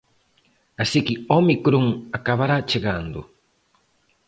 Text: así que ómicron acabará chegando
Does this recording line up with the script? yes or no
yes